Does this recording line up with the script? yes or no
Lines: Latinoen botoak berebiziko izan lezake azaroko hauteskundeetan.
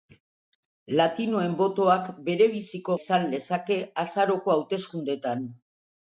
yes